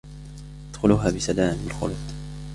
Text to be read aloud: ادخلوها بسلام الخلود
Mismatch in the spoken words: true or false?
false